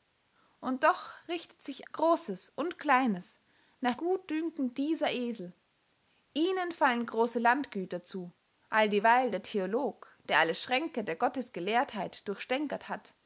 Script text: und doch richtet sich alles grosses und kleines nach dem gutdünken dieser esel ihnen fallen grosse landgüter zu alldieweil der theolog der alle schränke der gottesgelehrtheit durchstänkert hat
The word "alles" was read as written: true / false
false